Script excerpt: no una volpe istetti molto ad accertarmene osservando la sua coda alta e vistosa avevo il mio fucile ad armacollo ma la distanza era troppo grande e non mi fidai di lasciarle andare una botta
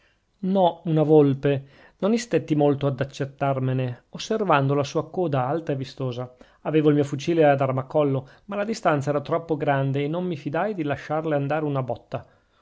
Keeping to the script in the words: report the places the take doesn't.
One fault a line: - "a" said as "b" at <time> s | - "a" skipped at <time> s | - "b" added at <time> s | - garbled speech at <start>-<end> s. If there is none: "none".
- "non" added at 2.0 s